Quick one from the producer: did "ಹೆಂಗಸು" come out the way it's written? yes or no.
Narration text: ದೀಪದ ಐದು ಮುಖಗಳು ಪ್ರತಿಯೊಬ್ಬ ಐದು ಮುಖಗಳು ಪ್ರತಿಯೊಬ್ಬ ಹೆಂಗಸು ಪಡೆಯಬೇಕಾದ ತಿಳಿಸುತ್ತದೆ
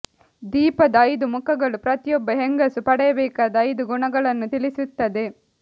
no